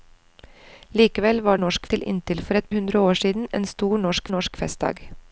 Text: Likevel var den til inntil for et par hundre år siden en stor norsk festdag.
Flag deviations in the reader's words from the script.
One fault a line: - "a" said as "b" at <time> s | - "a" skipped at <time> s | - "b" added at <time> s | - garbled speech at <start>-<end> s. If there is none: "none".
- "den" said as "norsk" at 1.5 s
- "par" skipped at 2.7 s
- "norsk" added at 4.3 s